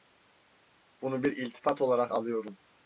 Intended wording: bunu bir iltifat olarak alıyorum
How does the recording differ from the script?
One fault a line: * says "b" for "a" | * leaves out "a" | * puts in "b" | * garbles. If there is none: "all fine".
all fine